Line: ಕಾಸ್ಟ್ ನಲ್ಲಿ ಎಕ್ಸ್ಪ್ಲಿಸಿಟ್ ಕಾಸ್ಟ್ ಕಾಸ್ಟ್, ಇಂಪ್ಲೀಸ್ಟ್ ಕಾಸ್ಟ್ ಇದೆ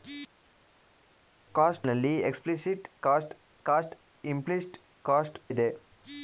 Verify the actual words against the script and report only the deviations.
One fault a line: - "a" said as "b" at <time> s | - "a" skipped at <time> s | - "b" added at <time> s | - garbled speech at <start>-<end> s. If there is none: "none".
none